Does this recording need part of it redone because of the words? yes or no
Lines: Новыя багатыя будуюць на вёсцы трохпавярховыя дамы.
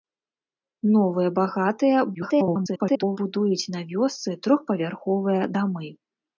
yes